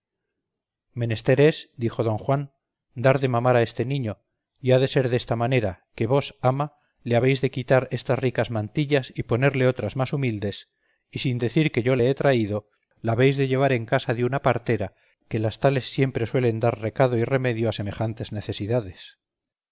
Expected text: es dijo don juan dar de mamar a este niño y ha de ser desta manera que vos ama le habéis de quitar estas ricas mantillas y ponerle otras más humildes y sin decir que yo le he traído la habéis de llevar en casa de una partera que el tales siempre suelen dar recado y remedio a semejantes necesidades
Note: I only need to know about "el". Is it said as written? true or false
false